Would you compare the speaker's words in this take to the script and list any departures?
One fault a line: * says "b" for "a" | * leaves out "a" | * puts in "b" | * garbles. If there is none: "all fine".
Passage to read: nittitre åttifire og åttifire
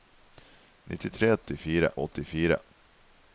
all fine